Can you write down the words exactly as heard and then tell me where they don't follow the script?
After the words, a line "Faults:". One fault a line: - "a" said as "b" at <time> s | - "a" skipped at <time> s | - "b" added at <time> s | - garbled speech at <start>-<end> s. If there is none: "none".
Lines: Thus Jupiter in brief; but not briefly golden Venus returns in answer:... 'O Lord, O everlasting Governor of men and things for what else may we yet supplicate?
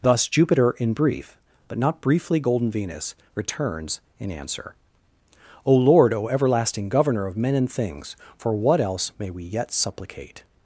Thus Jupiter in brief; but not briefly golden Venus returns in answer:... 'O Lord, O everlasting Governor of men and things for what else may we yet supplicate?
Faults:
none